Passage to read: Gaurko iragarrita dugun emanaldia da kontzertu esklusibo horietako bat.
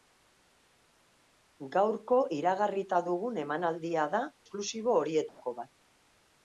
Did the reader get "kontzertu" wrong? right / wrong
wrong